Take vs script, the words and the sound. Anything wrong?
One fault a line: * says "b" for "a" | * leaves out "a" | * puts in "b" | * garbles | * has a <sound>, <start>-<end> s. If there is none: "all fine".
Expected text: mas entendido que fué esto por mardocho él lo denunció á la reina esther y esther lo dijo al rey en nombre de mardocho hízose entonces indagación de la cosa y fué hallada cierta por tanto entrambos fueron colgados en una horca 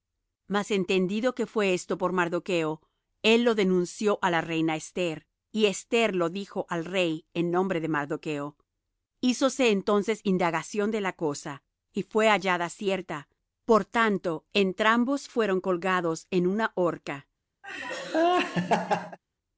* has a laugh, 17.6-19.2 s